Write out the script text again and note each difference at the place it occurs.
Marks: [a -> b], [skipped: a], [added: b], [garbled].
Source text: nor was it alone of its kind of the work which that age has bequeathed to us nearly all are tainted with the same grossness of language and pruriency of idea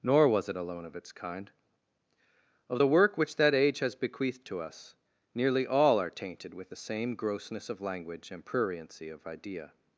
nor was it alone of its kind of the work which that age has bequeathed to us nearly all are tainted with the same grossness of language and pruriency of idea